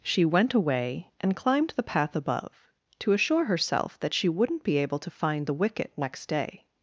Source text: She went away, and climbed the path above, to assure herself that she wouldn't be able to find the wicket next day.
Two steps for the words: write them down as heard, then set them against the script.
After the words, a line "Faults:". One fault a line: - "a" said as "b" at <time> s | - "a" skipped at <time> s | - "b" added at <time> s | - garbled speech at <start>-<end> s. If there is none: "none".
She went away, and climbed the path above, to assure herself that she wouldn't be able to find the wicket next day.
Faults:
none